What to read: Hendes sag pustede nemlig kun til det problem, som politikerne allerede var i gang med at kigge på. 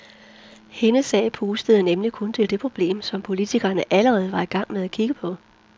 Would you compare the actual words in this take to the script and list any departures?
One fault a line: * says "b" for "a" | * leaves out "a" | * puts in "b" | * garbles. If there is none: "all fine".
all fine